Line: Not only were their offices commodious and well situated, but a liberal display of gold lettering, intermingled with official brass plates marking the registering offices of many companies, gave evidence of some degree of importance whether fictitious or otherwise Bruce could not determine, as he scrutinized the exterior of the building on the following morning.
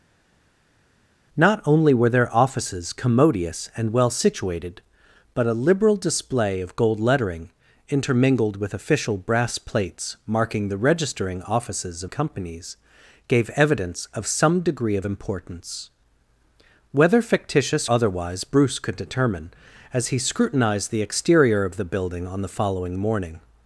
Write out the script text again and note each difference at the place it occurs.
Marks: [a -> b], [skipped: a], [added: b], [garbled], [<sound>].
Not only were their offices commodious and well situated, but a liberal display of gold lettering, intermingled with official brass plates marking the registering offices of [skipped: many] companies, gave evidence of some degree of importance whether fictitious [skipped: or] otherwise Bruce could [skipped: not] determine, as he scrutinized the exterior of the building on the following morning.